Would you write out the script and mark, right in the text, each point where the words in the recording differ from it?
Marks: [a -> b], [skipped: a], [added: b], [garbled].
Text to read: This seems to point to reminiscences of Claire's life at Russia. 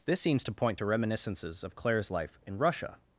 This seems to point to reminiscences of Claire's life [at -> in] Russia.